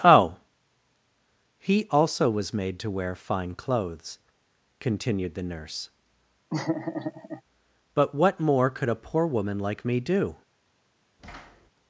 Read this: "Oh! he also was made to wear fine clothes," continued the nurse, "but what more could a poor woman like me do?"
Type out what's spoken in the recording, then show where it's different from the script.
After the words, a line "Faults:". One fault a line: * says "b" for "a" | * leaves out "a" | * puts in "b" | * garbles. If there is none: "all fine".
"Oh! he also was made to wear fine clothes," continued the nurse, "but what more could a poor woman like me do?"
Faults:
all fine